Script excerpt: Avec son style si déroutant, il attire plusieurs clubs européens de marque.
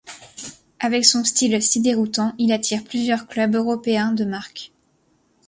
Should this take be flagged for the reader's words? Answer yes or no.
no